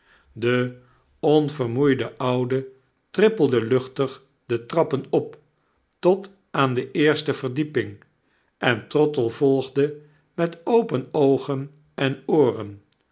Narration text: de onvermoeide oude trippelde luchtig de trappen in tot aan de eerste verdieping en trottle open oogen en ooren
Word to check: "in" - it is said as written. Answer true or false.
false